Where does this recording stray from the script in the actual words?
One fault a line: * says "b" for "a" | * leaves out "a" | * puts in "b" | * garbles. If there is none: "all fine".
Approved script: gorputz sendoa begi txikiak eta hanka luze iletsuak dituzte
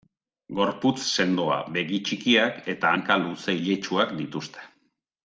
all fine